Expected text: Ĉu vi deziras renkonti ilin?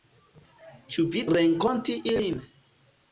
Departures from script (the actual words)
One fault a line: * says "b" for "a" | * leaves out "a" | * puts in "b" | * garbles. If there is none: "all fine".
* leaves out "deziras"